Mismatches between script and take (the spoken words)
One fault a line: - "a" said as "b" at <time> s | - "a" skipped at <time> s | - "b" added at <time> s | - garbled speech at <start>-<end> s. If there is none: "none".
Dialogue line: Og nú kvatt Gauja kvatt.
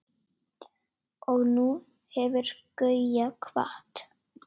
- "kvatt" said as "hefur" at 2.2 s